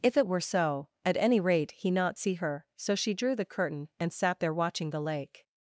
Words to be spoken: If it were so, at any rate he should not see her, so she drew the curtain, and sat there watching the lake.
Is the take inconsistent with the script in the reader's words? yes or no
yes